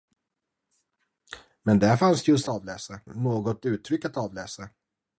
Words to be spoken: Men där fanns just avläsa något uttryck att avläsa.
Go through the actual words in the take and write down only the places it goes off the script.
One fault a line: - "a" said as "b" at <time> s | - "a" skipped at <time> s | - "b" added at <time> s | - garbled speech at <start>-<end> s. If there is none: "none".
none